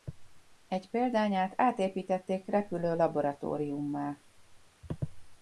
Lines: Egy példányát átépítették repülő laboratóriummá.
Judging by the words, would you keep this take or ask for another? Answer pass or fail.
pass